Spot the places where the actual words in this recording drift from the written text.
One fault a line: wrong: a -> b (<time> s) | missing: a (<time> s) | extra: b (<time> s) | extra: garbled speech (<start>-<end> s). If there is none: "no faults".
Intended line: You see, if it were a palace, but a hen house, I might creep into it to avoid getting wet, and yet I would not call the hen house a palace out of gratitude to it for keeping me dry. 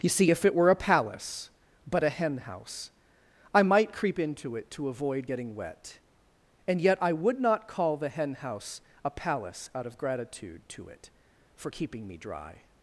no faults